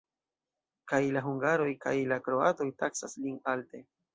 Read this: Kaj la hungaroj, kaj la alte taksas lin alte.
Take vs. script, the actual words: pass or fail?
fail